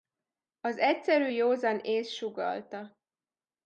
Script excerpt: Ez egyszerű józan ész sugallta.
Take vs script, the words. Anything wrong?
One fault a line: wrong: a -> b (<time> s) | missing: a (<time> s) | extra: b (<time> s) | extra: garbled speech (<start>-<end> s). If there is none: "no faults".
wrong: Ez -> Az (0.6 s)